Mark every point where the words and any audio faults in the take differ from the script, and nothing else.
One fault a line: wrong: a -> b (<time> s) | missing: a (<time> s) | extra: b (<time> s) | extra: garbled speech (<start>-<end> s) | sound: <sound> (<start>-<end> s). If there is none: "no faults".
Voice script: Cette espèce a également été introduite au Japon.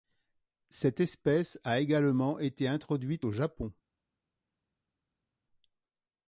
no faults